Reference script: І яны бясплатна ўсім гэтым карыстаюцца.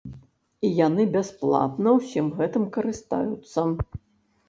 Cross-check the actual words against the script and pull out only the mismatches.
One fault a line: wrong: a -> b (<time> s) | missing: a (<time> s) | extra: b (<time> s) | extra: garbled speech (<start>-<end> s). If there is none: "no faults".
no faults